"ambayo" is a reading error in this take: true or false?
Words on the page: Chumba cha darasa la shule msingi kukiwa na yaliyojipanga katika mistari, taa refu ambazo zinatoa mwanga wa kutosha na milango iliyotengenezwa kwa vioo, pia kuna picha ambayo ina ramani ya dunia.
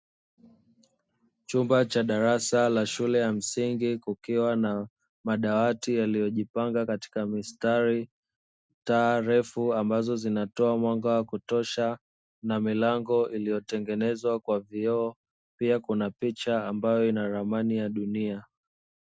false